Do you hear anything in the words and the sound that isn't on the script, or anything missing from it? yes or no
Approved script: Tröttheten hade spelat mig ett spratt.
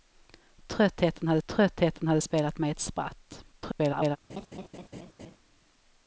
yes